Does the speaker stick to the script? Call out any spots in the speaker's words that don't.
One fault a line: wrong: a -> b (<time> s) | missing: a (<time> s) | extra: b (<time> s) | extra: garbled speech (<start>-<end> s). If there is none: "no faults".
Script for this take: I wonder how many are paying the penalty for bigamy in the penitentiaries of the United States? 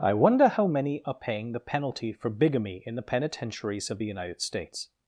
no faults